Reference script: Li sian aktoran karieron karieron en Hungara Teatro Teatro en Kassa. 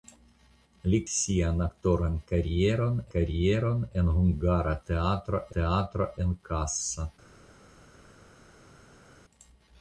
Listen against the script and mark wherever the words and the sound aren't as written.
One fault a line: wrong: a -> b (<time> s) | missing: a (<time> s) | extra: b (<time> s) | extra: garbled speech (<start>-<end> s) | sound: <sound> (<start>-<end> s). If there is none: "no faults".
no faults